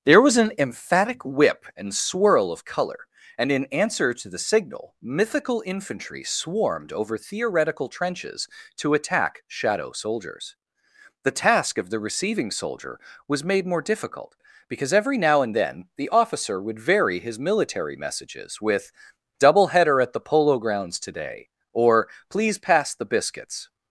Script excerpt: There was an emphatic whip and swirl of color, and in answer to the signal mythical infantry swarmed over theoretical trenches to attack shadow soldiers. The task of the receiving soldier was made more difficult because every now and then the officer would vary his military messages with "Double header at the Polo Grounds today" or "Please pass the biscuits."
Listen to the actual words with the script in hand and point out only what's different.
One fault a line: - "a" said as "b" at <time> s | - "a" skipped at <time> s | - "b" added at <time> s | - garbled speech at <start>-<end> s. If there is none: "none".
none